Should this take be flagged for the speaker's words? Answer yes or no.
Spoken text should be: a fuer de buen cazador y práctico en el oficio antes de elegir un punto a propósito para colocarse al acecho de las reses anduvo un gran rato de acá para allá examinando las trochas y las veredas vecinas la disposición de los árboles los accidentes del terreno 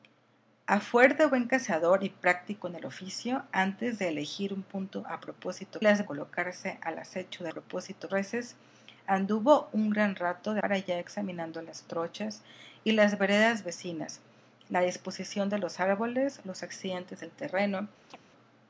yes